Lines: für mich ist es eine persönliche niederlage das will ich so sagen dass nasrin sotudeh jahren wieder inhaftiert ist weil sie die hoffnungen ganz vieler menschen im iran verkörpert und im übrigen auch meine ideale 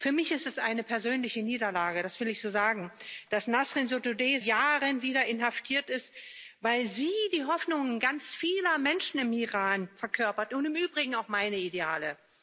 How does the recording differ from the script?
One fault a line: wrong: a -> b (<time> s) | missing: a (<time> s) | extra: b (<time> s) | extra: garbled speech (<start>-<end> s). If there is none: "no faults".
no faults